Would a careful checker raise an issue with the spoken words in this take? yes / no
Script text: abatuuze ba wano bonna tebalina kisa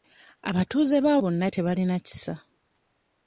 yes